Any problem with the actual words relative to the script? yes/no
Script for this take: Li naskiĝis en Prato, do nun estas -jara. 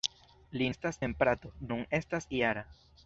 yes